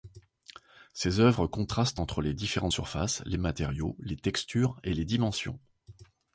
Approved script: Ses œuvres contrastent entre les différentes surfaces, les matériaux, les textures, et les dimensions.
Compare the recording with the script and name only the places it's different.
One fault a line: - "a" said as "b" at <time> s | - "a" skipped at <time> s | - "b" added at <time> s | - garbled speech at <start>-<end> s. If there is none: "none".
none